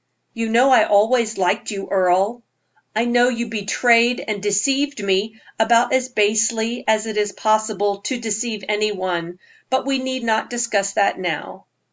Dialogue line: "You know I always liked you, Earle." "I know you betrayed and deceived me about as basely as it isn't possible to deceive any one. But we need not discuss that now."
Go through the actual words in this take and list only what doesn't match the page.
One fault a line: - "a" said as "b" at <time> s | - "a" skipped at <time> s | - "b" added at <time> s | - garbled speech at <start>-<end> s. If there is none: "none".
- "isn't" said as "is" at 7.2 s